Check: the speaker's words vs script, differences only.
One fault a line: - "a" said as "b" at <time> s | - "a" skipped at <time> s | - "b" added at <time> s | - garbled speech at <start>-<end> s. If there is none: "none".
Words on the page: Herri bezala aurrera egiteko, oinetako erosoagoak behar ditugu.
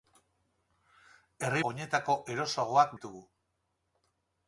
- "bezala aurrera egiteko" skipped at 1.6 s
- "behar" skipped at 3.0 s